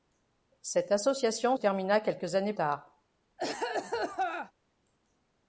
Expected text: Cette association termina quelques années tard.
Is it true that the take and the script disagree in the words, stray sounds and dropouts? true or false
true